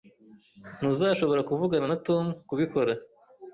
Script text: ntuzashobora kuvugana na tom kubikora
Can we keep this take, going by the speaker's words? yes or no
yes